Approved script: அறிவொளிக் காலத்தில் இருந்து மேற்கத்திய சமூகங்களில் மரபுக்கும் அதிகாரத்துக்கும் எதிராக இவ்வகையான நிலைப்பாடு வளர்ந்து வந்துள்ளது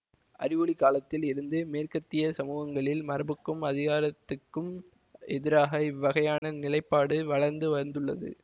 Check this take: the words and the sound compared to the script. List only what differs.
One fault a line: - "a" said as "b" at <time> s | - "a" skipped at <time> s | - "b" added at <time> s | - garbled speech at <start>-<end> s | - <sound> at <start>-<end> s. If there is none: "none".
- dropout at 6.4-6.4 s